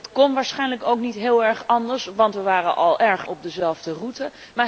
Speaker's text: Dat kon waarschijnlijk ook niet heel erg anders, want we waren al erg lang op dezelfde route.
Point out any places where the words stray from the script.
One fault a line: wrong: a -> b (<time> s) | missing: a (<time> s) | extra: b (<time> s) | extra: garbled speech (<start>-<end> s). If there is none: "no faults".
missing: lang (3.3 s)